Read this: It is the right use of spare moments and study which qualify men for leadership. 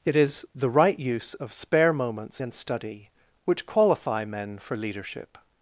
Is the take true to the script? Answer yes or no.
yes